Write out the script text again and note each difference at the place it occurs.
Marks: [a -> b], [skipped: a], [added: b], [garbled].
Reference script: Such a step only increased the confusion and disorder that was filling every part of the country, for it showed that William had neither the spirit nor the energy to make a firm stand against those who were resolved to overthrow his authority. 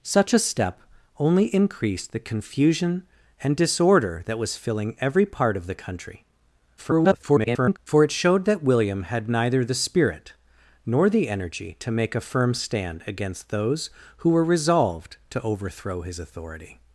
Such a step only increased the confusion and disorder that was filling every part of the country, [garbled] for it showed that William had neither the spirit nor the energy to make a firm stand against those who were resolved to overthrow his authority.